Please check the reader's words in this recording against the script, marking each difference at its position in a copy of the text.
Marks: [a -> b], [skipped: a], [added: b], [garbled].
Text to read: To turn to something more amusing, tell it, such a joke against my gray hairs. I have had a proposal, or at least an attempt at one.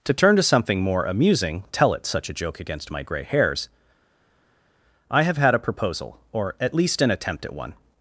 To turn to something more amusing, tell it, such a joke against my gray hairs. I have had a proposal, or at least an attempt at one.